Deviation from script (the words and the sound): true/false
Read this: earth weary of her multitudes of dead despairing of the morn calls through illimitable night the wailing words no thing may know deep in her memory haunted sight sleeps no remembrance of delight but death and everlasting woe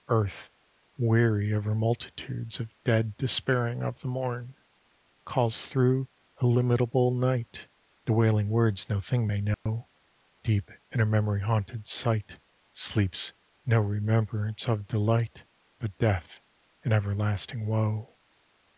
true